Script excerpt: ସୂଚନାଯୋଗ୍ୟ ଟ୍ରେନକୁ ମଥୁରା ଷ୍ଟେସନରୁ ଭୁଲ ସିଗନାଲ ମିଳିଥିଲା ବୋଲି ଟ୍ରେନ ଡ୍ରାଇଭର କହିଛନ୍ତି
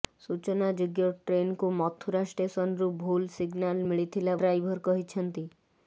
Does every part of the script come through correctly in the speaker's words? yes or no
no